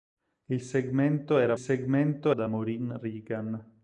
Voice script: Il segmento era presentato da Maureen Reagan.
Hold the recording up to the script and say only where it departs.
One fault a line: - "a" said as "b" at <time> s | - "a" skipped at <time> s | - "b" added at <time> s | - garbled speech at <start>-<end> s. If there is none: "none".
- "presentato" said as "segmento" at 1.6 s